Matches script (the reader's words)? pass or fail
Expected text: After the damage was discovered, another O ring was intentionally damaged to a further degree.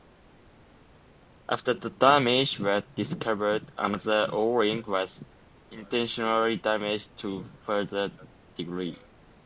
pass